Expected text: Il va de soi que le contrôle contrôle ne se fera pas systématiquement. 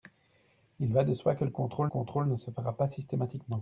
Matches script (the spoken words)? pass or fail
pass